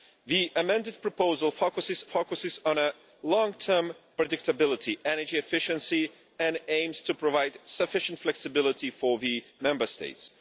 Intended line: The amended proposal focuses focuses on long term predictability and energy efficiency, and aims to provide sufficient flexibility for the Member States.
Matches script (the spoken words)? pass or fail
pass